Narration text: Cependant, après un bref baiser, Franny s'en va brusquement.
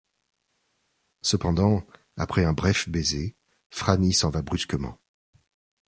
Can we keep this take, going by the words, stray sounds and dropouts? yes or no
yes